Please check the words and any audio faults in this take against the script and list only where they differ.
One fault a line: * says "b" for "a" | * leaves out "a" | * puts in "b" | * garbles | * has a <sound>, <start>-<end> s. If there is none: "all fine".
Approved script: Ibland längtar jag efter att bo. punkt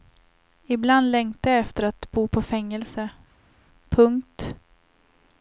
* puts in "på fängelse"